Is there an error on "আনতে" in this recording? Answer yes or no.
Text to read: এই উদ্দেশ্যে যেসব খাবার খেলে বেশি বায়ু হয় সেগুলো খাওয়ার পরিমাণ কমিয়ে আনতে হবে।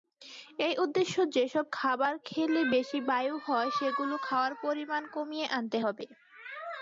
no